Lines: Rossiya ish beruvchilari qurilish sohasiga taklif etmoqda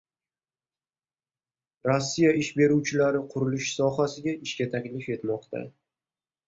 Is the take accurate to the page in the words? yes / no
no